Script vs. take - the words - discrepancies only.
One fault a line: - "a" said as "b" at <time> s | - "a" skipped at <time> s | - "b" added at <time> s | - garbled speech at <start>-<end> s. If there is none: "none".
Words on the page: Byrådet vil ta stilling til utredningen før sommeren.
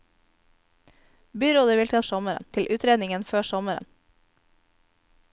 - "stilling" said as "sommeren" at 2.0 s